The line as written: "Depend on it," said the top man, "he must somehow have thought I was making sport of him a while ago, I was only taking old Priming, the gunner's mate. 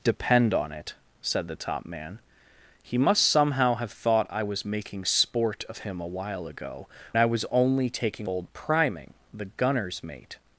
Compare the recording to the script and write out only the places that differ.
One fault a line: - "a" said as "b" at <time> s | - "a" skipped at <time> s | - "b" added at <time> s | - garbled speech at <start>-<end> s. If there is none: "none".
none